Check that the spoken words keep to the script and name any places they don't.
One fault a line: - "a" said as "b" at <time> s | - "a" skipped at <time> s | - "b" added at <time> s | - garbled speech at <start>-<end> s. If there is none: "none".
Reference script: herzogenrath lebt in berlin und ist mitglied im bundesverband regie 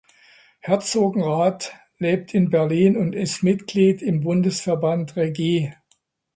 none